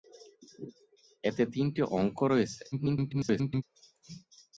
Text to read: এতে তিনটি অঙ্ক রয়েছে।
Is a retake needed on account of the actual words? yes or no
yes